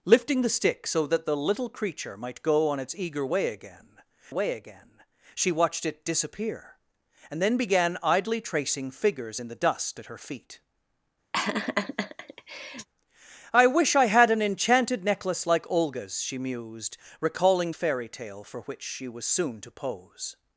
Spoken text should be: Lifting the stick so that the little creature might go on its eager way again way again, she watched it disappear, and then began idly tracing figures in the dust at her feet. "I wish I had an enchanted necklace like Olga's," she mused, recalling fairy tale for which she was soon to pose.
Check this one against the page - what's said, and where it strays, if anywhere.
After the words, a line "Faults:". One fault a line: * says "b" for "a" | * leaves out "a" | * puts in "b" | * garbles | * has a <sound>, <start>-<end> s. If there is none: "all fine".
Lifting the stick so that the little creature might go on its eager way again way again, she watched it disappear, and then began idly tracing figures in the dust at her feet. "I wish I had an enchanted necklace like Olga's," she mused, recalling fairy tale for which she was soon to pose.
Faults:
* has a laugh, 11.3-12.9 s